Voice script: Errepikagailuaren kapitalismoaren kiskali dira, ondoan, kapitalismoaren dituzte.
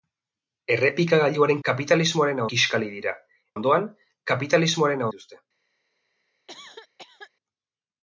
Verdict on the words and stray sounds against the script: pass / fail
fail